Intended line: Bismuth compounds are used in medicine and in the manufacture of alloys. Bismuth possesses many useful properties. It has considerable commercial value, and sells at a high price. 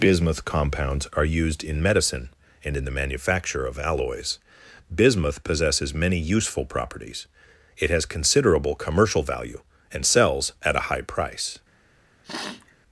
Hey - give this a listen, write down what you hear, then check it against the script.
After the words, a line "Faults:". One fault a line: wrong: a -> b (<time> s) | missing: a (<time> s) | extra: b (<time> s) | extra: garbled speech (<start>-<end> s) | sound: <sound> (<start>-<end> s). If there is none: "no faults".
Bismuth compounds are used in medicine and in the manufacture of alloys. Bismuth possesses many useful properties. It has considerable commercial value, and sells at a high price.
Faults:
sound: sniff (12.2-12.7 s)